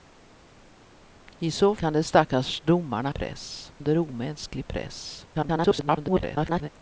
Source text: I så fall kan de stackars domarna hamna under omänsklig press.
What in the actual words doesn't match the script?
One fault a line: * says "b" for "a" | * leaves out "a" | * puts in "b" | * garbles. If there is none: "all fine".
* leaves out "fall"
* says "press" for "hamna"
* garbles